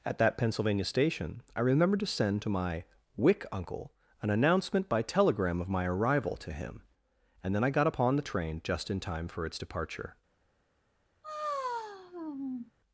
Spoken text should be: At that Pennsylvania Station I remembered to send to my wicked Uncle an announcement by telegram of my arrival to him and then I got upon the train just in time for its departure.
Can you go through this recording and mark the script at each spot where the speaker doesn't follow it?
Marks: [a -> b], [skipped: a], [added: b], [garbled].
At that Pennsylvania Station I remembered to send to my [wicked -> wick] Uncle an announcement by telegram of my arrival to him and then I got upon the train just in time for its departure.